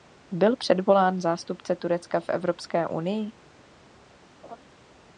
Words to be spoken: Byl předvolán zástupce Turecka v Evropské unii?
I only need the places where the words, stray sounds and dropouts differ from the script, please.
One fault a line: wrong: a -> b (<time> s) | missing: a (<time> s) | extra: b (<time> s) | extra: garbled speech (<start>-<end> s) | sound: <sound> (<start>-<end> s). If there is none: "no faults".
sound: laugh (4.4-4.6 s)